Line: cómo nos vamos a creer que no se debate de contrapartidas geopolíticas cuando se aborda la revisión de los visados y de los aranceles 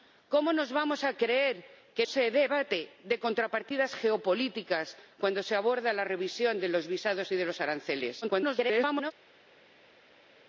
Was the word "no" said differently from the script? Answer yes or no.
yes